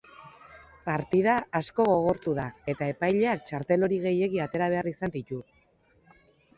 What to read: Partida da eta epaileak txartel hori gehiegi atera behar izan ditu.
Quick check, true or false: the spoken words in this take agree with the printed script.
false